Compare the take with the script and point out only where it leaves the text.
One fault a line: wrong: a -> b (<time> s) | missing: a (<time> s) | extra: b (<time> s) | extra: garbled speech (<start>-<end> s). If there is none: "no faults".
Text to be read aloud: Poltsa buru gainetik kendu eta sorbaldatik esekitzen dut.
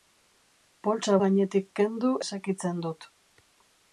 missing: buru (1.2 s)
missing: eta sorbaldatik (2.2 s)